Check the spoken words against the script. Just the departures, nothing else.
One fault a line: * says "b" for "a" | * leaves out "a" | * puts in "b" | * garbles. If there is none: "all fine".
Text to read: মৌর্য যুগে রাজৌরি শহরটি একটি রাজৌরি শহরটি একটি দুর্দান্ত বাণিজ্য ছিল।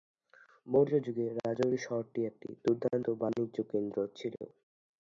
* leaves out "রাজৌরি শহরটি একটি"
* puts in "কেন্দ্র"